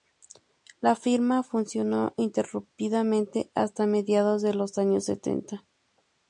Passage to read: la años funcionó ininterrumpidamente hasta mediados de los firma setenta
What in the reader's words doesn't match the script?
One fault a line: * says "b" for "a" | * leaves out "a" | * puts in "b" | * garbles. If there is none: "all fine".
* says "firma" for "años"
* says "años" for "firma"